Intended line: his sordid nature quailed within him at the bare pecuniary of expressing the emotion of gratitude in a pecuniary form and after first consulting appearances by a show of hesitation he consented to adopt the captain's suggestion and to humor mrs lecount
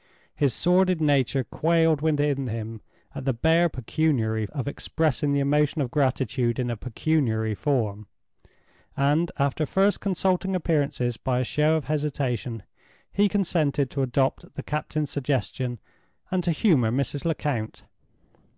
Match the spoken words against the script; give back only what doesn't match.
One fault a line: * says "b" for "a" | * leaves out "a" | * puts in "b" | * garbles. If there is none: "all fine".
all fine